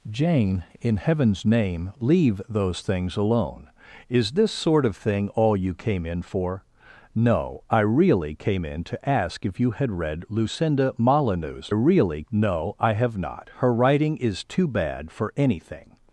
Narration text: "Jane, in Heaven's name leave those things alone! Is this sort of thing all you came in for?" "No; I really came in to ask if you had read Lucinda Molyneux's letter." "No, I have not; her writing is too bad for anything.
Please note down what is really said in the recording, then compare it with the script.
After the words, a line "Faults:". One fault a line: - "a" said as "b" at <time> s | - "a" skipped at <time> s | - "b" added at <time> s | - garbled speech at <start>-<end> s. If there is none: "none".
"Jane, in Heaven's name leave those things alone! Is this sort of thing all you came in for?" "No; I really came in to ask if you had read Lucinda Molyneux's really." "No, I have not; her writing is too bad for anything.
Faults:
- "letter" said as "really" at 11.7 s